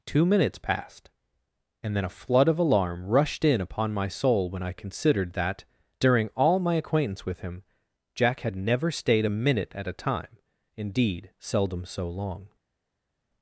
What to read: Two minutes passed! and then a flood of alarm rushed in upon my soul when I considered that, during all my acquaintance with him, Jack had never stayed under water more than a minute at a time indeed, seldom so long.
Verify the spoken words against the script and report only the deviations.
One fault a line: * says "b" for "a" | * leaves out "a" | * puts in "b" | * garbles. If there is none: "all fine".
* leaves out "under water more than"